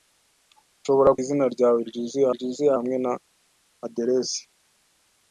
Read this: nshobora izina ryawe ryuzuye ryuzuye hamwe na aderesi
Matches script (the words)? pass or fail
pass